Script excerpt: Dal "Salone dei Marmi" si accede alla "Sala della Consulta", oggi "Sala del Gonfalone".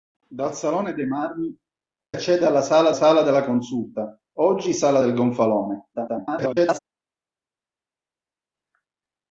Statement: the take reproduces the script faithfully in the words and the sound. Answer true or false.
false